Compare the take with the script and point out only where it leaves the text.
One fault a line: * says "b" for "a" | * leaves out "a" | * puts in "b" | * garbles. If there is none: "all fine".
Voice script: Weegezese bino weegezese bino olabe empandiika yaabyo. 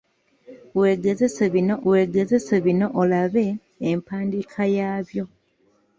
all fine